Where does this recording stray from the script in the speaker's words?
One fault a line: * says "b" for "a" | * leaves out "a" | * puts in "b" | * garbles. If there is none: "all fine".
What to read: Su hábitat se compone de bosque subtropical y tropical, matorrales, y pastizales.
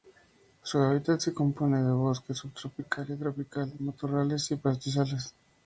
all fine